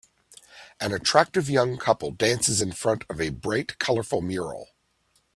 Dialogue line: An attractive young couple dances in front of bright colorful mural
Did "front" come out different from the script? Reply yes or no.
no